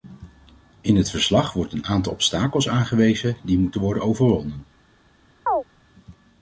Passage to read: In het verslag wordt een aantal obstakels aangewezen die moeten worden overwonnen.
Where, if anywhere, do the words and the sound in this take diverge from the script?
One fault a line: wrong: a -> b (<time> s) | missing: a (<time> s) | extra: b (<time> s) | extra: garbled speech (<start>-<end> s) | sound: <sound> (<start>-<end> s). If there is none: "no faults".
sound: chirp (5.5-5.6 s)